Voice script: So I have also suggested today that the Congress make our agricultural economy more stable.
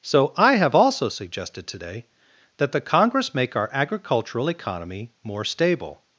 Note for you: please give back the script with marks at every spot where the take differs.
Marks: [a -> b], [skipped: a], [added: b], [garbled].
So I have also suggested today that the Congress make our agricultural economy more stable.